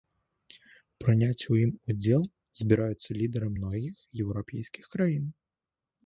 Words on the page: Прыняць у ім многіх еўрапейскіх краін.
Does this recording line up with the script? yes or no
no